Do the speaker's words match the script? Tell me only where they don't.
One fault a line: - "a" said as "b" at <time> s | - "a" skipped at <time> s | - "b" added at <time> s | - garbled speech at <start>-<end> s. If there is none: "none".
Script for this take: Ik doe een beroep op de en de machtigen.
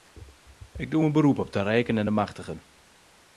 - "rijken" added at 1.6 s